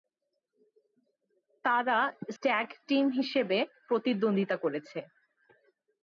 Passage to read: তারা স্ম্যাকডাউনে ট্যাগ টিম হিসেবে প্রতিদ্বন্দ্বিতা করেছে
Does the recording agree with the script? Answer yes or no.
no